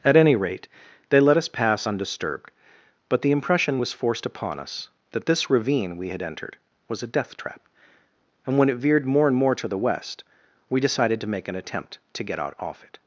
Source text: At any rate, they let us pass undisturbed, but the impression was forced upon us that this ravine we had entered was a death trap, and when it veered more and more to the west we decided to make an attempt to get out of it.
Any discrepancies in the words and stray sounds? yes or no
yes